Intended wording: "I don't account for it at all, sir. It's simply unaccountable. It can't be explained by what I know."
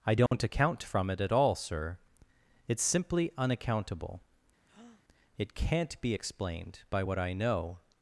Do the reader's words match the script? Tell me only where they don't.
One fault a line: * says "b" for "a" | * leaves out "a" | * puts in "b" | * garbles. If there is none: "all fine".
* says "from" for "for"